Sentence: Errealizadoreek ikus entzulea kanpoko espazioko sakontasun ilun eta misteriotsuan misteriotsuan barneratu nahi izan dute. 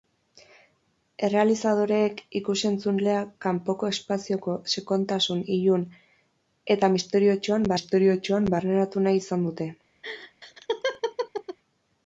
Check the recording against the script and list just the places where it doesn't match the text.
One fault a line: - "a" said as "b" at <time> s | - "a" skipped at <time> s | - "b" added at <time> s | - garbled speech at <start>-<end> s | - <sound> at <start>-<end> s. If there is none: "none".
- laugh at 10.0-11.6 s